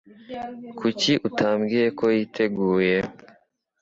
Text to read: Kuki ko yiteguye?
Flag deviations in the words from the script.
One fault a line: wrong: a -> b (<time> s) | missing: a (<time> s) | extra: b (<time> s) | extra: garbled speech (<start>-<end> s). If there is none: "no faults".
extra: utambwiye (1.3 s)